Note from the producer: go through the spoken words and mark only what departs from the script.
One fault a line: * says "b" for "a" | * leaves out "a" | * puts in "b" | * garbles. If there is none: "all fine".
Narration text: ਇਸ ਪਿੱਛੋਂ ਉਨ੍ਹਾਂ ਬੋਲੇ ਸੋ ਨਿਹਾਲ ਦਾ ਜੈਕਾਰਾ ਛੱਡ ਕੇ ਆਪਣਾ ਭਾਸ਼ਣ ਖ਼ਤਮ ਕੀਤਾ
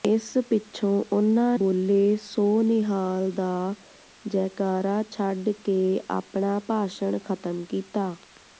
all fine